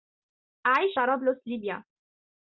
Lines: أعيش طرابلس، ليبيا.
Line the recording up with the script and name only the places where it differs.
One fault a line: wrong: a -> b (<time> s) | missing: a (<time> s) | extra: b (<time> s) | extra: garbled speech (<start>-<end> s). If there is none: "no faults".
no faults